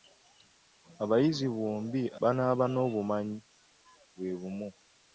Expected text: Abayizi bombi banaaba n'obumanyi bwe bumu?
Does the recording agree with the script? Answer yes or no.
yes